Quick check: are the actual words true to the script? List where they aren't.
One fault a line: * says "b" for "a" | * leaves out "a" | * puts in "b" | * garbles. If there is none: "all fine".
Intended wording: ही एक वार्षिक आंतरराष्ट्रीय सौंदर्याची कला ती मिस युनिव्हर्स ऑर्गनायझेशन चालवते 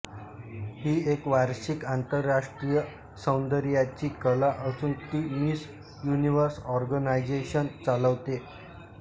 * puts in "असून"